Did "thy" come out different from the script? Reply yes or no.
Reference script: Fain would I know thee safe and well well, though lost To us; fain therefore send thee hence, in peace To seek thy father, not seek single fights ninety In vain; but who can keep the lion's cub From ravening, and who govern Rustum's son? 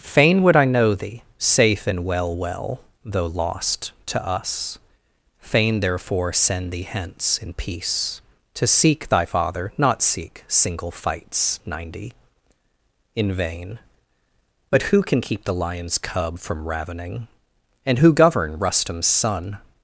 no